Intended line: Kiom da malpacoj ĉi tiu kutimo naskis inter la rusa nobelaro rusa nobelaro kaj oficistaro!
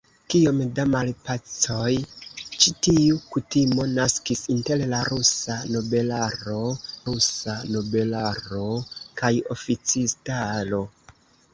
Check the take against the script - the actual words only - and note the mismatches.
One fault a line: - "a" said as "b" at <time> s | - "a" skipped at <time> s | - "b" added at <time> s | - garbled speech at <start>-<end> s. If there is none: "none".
none